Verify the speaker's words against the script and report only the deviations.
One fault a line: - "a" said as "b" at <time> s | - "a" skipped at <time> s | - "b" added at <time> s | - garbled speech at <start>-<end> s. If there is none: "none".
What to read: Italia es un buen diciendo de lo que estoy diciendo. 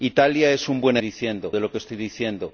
none